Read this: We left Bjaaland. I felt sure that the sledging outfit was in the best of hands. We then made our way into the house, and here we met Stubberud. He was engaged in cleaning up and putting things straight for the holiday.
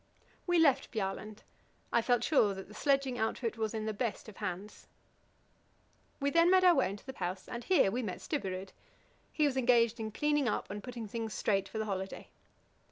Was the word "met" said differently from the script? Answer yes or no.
no